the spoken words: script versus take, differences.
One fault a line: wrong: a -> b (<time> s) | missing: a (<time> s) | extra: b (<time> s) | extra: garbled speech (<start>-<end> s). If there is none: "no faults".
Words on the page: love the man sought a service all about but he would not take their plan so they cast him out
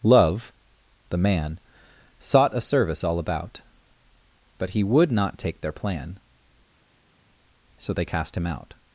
no faults